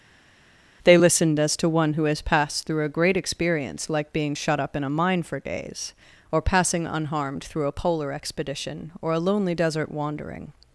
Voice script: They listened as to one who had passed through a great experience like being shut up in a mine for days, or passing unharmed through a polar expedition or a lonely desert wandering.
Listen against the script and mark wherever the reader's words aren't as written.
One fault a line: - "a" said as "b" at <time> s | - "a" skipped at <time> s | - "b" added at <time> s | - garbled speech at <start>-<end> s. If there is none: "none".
- "had" said as "has" at 2.0 s